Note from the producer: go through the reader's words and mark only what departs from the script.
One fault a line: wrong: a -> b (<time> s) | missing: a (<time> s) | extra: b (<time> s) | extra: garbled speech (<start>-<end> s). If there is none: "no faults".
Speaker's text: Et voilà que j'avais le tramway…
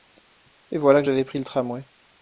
extra: pris (1.2 s)